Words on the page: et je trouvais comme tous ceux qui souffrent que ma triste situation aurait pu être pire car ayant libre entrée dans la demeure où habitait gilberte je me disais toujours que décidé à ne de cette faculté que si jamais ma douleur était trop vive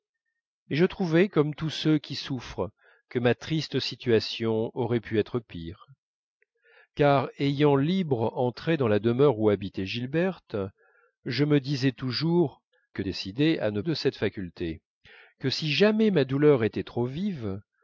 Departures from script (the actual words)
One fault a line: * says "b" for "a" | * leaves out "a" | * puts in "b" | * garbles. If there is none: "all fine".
all fine